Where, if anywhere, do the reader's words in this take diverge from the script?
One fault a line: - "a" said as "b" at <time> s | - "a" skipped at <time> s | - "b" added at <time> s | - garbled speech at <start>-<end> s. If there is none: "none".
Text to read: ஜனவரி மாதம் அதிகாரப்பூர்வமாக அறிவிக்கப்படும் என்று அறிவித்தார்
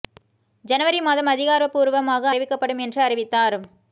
none